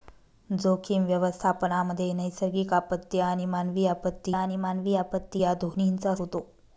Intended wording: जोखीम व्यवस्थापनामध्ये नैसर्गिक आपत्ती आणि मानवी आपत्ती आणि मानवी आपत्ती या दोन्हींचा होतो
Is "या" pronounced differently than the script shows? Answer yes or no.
no